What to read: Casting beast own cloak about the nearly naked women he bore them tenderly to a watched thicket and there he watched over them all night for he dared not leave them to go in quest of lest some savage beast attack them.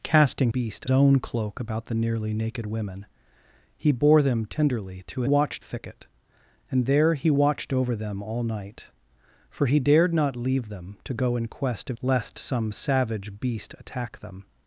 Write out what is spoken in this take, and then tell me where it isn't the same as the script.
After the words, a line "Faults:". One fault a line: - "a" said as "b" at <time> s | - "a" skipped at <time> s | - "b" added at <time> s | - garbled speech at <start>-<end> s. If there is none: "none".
Casting beast own cloak about the nearly naked women he bore them tenderly to a watched thicket and there he watched over them all night for he dared not leave them to go in quest of lest some savage beast attack them.
Faults:
none